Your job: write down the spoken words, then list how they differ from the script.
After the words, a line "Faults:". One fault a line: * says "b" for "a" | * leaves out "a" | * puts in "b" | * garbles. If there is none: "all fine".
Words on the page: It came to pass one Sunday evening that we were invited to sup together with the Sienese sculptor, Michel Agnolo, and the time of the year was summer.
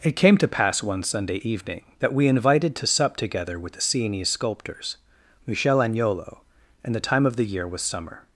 It came to pass one Sunday evening that we invited to sup together with the Sienese sculptors, Michel Agnolo, and the time of the year was summer.
Faults:
* leaves out "were"
* says "sculptors" for "sculptor"